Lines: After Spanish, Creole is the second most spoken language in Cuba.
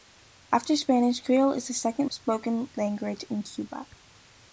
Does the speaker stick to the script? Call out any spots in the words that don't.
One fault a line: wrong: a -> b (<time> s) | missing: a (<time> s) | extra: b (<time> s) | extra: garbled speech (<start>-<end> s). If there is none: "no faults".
missing: most (2.1 s)